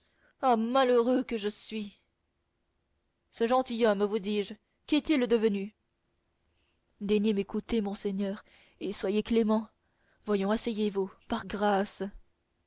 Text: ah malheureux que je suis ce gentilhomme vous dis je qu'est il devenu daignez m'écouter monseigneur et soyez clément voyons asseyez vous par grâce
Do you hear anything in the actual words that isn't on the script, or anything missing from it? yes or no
no